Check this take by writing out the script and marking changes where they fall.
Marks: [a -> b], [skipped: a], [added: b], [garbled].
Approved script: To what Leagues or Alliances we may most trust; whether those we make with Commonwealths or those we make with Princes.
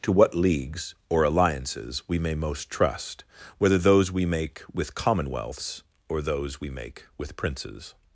To what Leagues or Alliances we may most trust; whether those we make with Commonwealths or those we make with Princes.